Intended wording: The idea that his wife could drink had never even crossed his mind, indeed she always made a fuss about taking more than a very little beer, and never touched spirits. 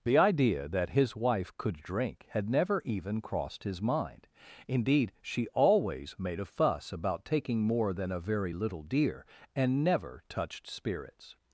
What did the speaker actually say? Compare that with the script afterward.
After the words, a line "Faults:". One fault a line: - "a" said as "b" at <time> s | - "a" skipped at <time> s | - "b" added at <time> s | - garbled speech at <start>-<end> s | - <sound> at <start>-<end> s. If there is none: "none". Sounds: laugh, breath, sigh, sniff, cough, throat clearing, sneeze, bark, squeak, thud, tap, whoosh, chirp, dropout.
The idea that his wife could drink had never even crossed his mind, indeed she always made a fuss about taking more than a very little deer, and never touched spirits.
Faults:
- "beer" said as "deer" at 8.8 s